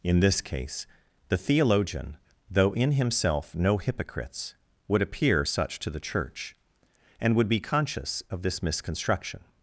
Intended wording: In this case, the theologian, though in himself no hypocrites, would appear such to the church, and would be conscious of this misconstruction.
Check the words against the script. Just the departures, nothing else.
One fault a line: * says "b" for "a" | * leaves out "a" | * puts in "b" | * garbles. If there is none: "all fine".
all fine